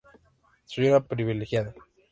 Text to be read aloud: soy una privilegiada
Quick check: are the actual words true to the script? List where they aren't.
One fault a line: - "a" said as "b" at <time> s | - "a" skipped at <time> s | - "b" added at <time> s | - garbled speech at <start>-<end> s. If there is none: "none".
none